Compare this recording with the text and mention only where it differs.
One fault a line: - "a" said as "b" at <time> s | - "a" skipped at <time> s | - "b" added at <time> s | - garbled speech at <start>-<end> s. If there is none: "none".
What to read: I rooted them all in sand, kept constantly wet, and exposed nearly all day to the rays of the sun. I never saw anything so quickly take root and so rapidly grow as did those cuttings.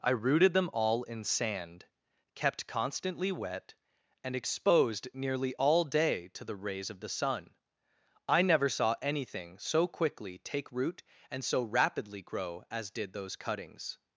none